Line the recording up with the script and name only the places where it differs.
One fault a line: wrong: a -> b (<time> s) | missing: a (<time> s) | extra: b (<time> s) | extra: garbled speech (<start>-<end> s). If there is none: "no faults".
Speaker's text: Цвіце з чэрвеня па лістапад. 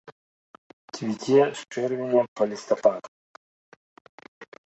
no faults